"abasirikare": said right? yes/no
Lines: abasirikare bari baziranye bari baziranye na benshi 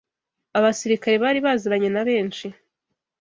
yes